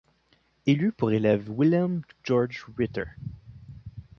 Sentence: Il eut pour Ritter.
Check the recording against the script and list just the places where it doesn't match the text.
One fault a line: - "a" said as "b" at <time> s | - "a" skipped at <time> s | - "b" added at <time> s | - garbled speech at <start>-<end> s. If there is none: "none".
- "élève Wilhelm Georg" added at 1.1 s